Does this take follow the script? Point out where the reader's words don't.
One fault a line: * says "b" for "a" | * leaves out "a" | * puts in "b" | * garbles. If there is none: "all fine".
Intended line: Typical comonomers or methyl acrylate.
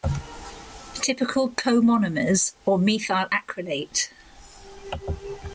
all fine